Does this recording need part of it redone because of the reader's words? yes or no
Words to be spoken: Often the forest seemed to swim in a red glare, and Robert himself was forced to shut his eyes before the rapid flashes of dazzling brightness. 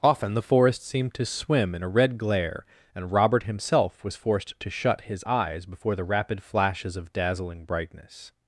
no